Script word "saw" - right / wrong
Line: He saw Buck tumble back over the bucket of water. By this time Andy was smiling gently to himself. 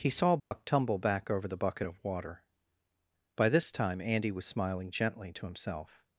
right